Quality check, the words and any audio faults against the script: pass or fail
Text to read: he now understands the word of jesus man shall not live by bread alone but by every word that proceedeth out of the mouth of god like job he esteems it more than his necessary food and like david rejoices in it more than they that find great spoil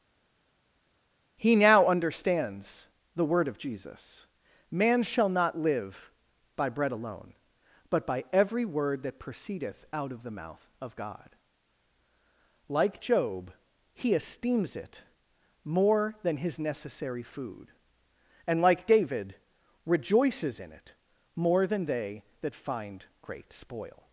pass